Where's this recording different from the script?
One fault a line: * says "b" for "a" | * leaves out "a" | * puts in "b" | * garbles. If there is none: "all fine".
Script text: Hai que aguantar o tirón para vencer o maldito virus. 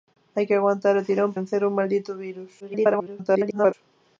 * leaves out "para"
* garbles